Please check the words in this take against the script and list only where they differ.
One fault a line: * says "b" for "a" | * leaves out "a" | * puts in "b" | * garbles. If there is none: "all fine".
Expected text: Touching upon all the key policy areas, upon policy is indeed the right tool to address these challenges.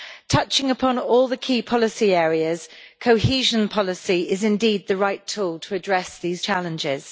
* says "cohesion" for "upon"